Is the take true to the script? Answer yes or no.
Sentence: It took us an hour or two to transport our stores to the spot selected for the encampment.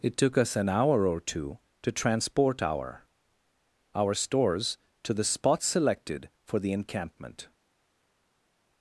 no